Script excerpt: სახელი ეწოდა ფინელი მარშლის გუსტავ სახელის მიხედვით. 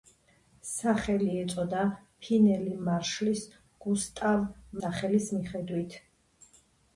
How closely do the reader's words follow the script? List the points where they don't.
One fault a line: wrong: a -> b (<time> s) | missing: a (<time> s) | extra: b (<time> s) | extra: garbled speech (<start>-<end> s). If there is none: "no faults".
no faults